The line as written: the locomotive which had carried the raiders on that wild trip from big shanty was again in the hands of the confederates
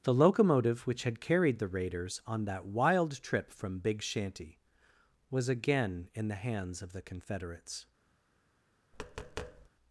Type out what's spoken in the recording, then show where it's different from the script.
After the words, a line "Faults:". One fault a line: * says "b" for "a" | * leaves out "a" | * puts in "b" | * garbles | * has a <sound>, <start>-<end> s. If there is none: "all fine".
the locomotive which had carried the raiders on that wild trip from big shanty was again in the hands of the confederates
Faults:
* has a tap, 8.9-9.7 s